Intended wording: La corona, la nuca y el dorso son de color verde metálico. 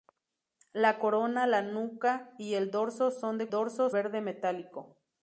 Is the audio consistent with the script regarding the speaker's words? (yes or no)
no